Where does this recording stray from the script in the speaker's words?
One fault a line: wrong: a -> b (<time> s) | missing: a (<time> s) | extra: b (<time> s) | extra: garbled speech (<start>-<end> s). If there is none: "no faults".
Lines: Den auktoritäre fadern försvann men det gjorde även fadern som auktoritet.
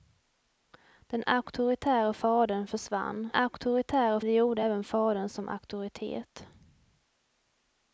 wrong: men -> auktoritäre (3.3 s)